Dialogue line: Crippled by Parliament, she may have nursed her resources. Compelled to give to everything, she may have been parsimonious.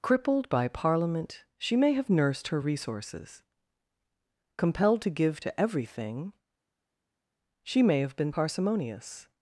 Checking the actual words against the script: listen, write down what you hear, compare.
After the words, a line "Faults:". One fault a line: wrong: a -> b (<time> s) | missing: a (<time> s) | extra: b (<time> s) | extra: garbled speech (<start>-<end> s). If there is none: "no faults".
Crippled by Parliament, she may have nursed her resources. Compelled to give to everything, she may have been parsimonious.
Faults:
no faults